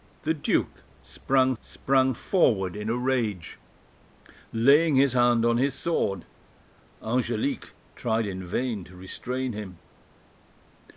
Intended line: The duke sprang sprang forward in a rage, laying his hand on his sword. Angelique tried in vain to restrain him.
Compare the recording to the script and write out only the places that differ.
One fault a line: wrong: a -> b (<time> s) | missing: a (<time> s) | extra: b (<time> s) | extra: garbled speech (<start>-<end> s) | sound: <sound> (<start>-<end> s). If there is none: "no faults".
no faults